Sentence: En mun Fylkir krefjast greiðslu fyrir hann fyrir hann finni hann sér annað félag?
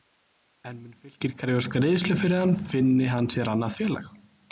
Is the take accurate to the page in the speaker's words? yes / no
no